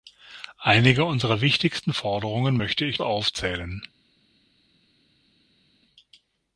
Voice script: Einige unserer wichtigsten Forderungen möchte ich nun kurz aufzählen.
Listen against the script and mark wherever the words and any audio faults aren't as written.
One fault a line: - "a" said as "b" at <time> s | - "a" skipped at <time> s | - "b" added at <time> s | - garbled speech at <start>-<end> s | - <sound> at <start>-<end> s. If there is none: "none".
- "nun kurz" skipped at 3.0 s